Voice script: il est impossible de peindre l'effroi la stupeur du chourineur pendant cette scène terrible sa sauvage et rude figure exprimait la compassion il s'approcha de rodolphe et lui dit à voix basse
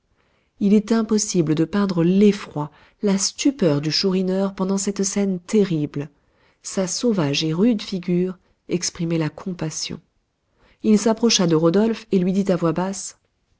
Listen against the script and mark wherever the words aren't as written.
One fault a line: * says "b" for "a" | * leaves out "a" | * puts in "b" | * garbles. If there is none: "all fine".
all fine